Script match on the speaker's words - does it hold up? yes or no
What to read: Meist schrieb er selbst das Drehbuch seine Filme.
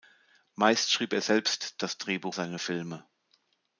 yes